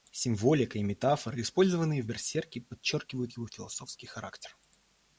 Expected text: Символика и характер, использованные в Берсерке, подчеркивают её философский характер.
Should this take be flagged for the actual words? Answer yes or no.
yes